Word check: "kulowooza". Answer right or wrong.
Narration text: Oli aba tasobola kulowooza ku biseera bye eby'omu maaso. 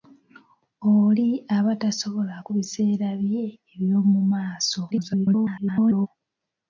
wrong